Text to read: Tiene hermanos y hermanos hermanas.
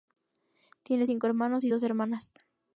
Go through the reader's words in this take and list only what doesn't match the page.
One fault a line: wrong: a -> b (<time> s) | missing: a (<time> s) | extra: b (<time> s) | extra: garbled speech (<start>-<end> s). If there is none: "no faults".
extra: cinco (1.0 s)
wrong: hermanos -> dos (1.7 s)